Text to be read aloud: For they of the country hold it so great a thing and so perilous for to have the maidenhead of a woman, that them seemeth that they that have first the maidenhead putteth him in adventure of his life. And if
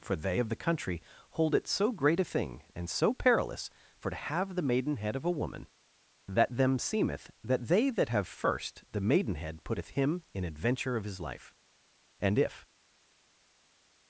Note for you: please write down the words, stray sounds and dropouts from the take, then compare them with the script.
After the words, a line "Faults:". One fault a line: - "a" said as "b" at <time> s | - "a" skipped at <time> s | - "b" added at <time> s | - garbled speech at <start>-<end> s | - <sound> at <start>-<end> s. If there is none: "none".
For they of the country hold it so great a thing and so perilous for to have the maidenhead of a woman, that them seemeth that they that have first the maidenhead putteth him in adventure of his life. And if
Faults:
none